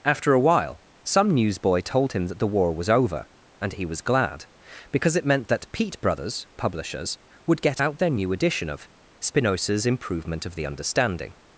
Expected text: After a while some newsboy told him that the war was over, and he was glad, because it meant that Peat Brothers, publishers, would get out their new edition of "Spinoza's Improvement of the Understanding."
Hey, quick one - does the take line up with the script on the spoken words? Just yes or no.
yes